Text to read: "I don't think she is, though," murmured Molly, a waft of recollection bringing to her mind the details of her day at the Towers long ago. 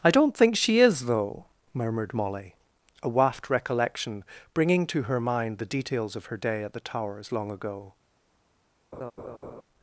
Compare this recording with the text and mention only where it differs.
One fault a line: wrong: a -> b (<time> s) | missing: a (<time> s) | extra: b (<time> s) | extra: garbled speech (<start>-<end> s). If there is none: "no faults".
missing: of (3.5 s)